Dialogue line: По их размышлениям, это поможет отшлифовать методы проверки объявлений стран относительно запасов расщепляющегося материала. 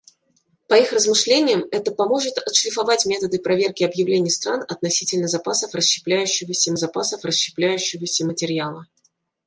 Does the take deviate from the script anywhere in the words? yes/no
yes